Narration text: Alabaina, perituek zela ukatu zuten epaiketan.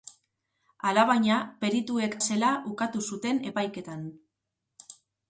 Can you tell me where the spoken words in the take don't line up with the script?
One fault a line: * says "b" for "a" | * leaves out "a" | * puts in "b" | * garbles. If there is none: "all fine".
all fine